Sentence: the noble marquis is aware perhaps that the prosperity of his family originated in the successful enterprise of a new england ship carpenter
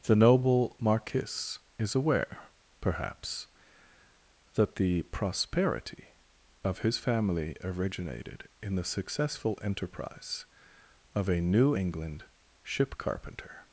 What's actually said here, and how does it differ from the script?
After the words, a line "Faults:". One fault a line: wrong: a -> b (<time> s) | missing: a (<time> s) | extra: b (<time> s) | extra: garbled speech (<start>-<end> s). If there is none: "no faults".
the noble marquis is aware perhaps that the prosperity of his family originated in the successful enterprise of a new england ship carpenter
Faults:
no faults